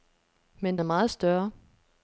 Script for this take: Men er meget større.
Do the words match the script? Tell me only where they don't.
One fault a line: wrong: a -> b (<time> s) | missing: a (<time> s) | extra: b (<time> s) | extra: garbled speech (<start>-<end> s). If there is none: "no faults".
no faults